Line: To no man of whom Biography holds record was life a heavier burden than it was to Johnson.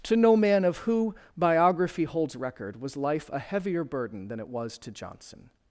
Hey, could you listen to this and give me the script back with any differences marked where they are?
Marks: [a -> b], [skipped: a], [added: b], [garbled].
To no man of [whom -> who] Biography holds record was life a heavier burden than it was to Johnson.